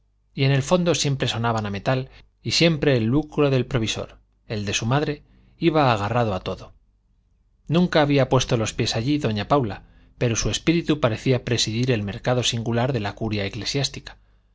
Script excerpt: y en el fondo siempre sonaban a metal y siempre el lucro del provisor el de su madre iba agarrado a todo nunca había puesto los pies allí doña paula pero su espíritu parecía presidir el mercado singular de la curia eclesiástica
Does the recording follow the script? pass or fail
pass